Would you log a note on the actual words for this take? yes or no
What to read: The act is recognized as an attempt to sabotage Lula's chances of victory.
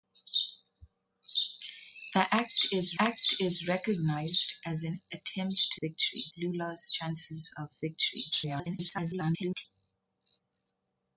yes